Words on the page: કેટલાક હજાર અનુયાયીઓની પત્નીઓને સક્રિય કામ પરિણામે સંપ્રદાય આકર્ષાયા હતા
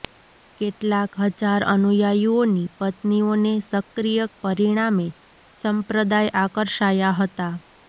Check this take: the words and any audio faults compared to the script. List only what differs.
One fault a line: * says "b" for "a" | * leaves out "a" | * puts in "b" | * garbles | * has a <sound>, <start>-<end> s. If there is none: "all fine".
* leaves out "કામ"